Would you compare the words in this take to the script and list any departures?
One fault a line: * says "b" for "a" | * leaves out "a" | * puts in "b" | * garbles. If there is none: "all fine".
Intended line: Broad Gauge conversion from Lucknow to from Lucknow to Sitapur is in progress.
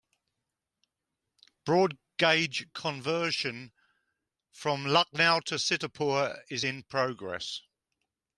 * leaves out "from Lucknow to"